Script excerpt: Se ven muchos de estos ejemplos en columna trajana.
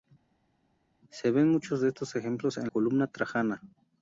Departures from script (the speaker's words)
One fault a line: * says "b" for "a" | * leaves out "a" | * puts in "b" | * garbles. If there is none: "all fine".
all fine